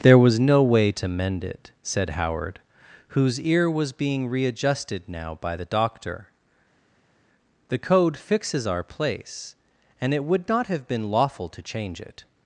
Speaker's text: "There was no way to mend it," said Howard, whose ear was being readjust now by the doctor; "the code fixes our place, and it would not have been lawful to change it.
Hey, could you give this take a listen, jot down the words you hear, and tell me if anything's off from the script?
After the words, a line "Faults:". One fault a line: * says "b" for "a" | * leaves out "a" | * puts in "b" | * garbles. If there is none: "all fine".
"There was no way to mend it," said Howard, whose ear was being readjusted now by the doctor; "the code fixes our place, and it would not have been lawful to change it.
Faults:
* says "readjusted" for "readjust"